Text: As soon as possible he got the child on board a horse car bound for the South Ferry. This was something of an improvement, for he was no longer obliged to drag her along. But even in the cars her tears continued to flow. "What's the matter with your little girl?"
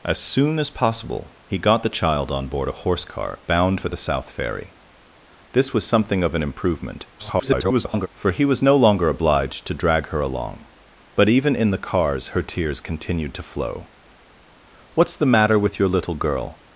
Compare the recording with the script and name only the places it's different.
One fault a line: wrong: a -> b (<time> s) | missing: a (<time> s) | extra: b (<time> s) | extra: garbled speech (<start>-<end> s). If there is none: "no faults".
extra: garbled speech (7.2-8.1 s)